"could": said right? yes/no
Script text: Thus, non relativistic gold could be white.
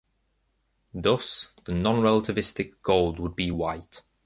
no